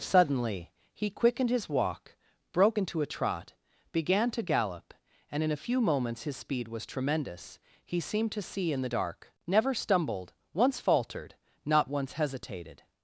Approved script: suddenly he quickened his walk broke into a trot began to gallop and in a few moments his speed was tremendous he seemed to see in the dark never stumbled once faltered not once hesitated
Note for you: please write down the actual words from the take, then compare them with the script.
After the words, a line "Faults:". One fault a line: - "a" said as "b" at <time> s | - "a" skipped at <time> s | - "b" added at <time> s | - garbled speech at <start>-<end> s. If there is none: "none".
suddenly he quickened his walk broke into a trot began to gallop and in a few moments his speed was tremendous he seemed to see in the dark never stumbled once faltered not once hesitated
Faults:
none